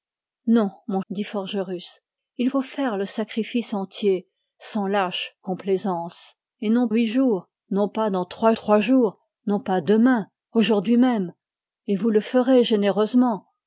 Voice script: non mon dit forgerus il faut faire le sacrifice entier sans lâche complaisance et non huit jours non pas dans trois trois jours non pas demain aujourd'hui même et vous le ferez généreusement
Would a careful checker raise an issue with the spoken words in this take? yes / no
no